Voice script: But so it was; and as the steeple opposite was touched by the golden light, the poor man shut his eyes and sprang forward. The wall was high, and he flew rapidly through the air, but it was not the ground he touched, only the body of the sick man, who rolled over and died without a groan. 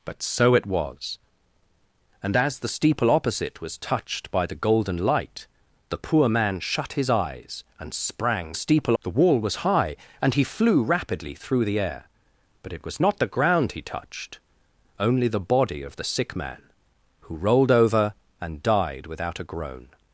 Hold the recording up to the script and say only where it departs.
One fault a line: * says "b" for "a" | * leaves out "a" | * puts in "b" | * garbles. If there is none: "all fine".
* says "steeple" for "forward"